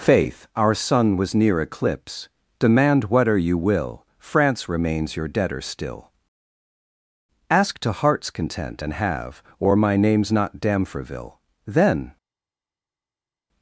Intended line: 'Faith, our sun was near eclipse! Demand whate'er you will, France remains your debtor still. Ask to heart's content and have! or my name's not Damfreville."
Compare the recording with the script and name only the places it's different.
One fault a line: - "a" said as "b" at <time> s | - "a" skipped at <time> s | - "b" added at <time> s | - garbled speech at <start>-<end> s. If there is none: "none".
- "Then" added at 11.7 s